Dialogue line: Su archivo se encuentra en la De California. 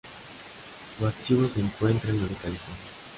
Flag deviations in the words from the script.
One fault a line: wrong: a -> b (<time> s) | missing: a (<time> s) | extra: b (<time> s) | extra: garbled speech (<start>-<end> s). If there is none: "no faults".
no faults